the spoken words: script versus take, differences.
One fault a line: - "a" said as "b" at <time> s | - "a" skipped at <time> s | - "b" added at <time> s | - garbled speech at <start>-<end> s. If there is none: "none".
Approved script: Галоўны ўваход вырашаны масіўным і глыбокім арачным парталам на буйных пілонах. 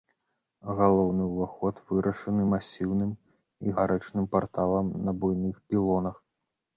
- "глыбокім" skipped at 3.7 s